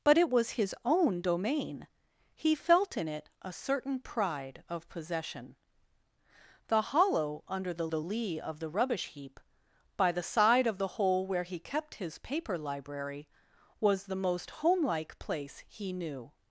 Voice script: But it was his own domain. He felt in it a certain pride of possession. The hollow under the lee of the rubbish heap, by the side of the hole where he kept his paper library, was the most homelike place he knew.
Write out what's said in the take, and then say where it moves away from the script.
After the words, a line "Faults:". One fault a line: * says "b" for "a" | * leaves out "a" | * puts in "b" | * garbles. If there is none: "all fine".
But it was his own domain. He felt in it a certain pride of possession. The hollow under the the lee of the rubbish heap, by the side of the hole where he kept his paper library, was the most homelike place he knew.
Faults:
* puts in "the"